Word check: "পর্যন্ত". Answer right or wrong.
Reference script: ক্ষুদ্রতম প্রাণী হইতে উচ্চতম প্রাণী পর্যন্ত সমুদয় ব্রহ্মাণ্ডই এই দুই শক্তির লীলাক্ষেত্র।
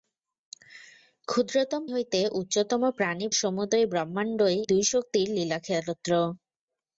wrong